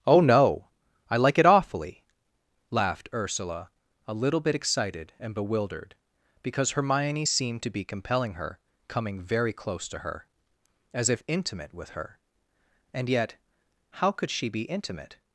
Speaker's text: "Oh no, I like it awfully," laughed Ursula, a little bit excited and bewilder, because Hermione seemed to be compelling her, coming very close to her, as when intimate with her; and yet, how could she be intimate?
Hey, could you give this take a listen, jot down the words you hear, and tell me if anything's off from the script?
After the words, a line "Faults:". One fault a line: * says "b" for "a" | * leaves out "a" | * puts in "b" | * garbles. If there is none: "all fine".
"Oh no, I like it awfully," laughed Ursula, a little bit excited and bewildered, because Hermione seemed to be compelling her, coming very close to her, as if intimate with her; and yet, how could she be intimate?
Faults:
* says "bewildered" for "bewilder"
* says "if" for "when"